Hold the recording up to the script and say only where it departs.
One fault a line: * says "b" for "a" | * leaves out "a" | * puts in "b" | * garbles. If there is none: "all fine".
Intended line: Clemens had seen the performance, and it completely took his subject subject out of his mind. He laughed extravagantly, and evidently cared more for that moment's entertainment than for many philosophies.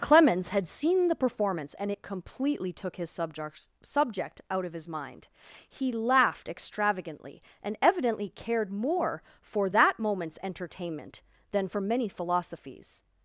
all fine